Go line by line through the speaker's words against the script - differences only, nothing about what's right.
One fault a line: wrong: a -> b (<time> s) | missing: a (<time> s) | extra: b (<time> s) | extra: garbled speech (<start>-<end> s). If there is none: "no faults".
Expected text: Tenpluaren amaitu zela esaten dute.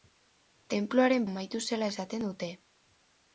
no faults